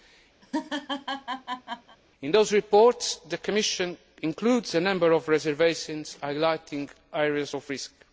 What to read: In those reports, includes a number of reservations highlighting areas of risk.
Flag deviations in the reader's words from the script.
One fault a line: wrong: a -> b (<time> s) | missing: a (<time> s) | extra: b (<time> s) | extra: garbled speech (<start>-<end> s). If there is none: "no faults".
extra: the Commission (3.3 s)